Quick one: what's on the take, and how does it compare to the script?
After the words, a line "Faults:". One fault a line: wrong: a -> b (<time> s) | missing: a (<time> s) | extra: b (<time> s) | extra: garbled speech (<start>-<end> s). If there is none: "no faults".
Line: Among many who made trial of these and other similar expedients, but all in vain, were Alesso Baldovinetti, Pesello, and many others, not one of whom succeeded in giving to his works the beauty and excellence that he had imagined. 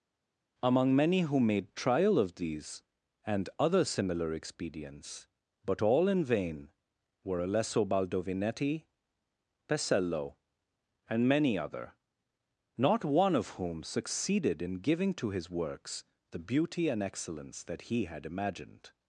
Among many who made trial of these and other similar expedients, but all in vain, were Alesso Baldovinetti, Pesello, and many other, not one of whom succeeded in giving to his works the beauty and excellence that he had imagined.
Faults:
wrong: others -> other (11.6 s)